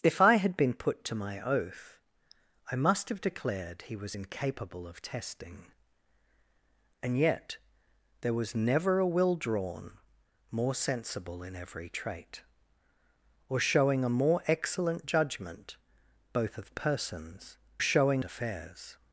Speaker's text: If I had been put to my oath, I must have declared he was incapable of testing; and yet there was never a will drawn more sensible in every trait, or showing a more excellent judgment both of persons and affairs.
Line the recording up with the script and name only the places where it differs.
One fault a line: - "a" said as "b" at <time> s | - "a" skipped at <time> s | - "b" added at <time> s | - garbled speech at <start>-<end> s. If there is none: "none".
- "and" said as "showing" at 17.8 s